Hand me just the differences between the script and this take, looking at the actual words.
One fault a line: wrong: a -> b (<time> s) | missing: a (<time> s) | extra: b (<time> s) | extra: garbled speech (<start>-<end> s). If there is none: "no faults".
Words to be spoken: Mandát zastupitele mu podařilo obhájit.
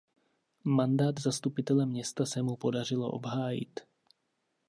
extra: města se (1.9 s)